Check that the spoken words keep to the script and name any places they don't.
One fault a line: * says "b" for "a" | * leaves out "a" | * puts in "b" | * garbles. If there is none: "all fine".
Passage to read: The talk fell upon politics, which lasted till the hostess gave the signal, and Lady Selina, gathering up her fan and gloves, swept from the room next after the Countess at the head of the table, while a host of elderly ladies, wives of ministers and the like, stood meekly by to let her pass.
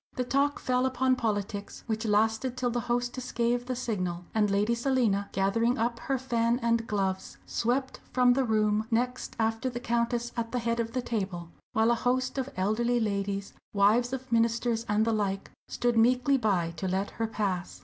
all fine